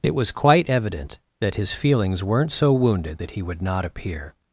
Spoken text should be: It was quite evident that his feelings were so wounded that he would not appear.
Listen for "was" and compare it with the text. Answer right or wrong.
right